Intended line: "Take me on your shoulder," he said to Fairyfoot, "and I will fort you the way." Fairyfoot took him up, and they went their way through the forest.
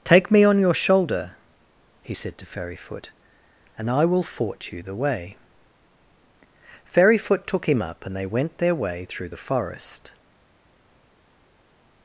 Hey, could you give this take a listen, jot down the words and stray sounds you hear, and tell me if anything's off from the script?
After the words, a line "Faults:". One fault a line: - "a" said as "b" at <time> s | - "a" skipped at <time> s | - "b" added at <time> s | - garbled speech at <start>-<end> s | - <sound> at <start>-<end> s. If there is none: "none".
"Take me on your shoulder," he said to Fairyfoot, "and I will fort you the way." Fairyfoot took him up, and they went their way through the forest.
Faults:
none